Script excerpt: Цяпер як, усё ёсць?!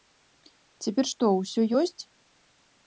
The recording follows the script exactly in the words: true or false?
false